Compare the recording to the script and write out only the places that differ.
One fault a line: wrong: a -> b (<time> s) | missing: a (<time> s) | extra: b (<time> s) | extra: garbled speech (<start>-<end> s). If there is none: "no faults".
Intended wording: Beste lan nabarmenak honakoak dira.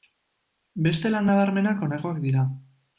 no faults